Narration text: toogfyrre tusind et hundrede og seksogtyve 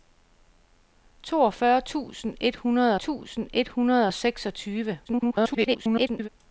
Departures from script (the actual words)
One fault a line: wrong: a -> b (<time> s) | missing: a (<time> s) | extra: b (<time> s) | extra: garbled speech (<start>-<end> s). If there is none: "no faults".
extra: tusind et hundrede (2.9 s)
extra: garbled speech (5.0-6.3 s)